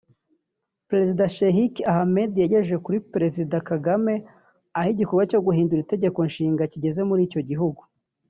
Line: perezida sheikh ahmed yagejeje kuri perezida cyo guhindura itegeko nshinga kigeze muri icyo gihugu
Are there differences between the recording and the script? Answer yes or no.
yes